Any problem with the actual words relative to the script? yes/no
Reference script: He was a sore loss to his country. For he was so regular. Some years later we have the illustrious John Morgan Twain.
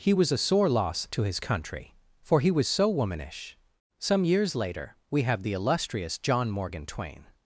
yes